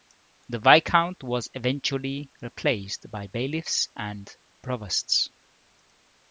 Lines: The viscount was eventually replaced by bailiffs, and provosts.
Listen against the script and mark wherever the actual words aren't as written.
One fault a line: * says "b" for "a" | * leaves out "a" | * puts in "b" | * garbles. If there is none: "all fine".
all fine